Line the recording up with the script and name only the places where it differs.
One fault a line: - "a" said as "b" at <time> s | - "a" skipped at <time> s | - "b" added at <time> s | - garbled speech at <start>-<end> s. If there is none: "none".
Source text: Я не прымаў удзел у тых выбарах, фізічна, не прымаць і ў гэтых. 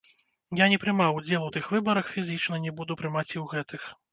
- "буду" added at 2.8 s